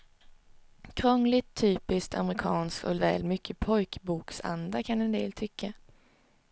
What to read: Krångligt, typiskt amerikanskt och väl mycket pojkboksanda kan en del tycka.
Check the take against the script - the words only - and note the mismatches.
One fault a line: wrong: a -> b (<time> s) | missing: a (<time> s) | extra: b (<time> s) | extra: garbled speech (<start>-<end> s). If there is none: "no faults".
no faults